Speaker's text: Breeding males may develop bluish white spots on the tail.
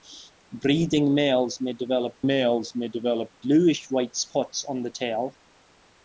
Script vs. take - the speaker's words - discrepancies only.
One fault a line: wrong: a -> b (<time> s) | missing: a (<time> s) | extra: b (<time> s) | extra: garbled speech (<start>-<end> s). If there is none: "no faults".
extra: males may develop (2.2 s)